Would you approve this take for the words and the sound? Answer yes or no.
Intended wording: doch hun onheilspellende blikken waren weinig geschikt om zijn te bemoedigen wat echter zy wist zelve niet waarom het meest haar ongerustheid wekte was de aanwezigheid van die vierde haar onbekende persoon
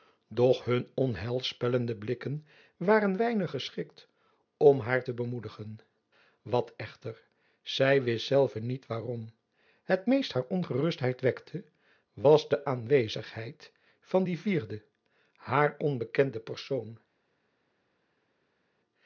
no